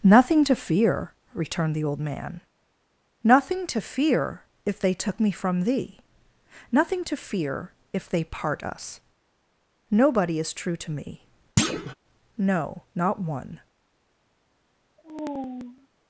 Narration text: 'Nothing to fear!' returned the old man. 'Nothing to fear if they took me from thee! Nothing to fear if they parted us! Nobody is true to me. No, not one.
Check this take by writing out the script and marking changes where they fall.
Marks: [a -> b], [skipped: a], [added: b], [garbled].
'Nothing to fear!' returned the old man. 'Nothing to fear if they took me from thee! Nothing to fear if they [parted -> part] us! Nobody is true to me. No, not one.